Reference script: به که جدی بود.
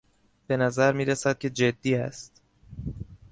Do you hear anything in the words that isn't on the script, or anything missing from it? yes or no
yes